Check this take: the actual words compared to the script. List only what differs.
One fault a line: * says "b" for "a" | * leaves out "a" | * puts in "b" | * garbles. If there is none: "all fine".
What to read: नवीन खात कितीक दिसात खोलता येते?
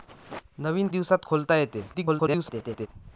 * leaves out "खात कितीक"
* garbles